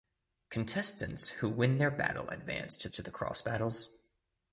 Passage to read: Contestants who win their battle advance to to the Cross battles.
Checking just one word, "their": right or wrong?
right